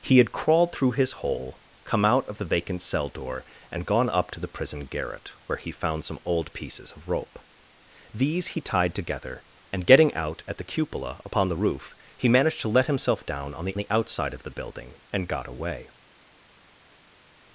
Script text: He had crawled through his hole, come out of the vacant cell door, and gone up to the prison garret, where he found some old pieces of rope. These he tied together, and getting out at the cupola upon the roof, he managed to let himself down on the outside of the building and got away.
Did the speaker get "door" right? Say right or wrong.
right